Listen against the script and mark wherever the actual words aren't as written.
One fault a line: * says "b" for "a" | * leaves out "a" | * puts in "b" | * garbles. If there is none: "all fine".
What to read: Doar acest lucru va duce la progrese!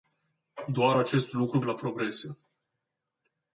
* leaves out "va duce"